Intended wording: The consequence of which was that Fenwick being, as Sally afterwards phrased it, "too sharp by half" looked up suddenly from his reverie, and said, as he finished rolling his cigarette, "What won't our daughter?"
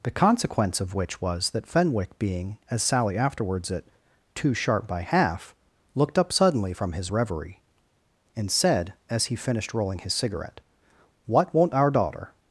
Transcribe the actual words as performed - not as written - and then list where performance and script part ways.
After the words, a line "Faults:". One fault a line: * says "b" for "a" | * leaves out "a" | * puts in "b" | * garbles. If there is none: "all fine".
The consequence of which was that Fenwick being, as Sally afterwards it, "too sharp by half" looked up suddenly from his reverie, and said, as he finished rolling his cigarette, "What won't our daughter?"
Faults:
* leaves out "phrased"